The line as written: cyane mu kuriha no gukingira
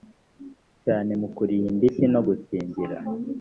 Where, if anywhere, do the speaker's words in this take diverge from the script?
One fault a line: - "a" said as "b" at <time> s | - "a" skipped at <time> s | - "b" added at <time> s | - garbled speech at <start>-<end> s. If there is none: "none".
- "indishyi" added at 1.7 s